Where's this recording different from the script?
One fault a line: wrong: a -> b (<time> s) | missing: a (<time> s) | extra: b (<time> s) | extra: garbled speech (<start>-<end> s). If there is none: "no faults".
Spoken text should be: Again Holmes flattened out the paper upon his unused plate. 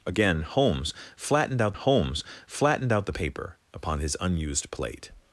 extra: Holmes flattened out (1.7 s)